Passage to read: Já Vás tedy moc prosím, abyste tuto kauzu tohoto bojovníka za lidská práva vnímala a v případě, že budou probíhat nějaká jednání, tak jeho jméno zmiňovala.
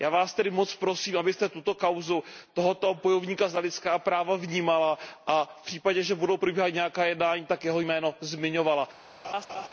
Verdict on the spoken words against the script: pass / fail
pass